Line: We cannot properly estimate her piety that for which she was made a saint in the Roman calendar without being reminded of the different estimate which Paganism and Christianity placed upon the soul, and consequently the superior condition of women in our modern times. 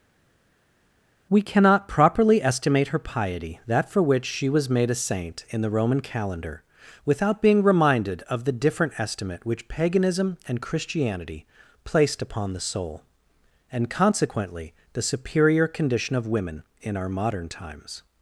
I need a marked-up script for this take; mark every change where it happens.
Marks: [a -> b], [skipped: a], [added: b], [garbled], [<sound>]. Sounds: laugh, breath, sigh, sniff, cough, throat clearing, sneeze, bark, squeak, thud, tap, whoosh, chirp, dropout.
We cannot properly estimate her piety that for which she was made a saint in the Roman calendar without being reminded of the different estimate which Paganism and Christianity placed upon the soul, and consequently the superior condition of women in our modern times.